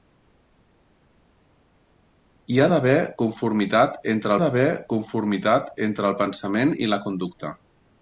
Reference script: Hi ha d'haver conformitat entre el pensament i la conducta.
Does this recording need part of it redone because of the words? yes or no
yes